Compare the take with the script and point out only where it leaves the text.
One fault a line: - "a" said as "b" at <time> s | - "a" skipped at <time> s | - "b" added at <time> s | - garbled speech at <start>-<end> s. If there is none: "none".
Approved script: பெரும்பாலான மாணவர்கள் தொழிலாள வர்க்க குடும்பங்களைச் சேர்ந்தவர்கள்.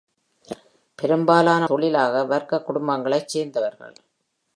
- "மாணவர்கள்" skipped at 1.7 s